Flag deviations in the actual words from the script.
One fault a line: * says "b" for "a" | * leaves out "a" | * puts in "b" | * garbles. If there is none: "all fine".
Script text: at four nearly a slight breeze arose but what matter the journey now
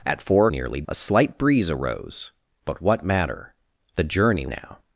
all fine